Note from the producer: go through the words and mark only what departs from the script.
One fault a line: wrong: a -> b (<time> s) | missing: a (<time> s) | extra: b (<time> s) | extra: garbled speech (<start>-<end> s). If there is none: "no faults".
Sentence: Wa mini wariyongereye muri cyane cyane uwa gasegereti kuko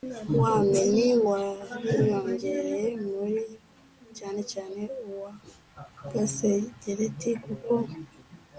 no faults